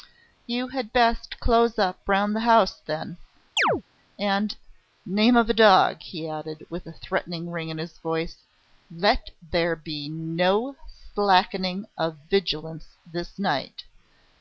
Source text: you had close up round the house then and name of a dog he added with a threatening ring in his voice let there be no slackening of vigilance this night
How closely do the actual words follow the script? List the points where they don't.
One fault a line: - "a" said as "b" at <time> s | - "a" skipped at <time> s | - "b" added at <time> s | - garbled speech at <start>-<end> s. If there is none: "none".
- "best" added at 0.9 s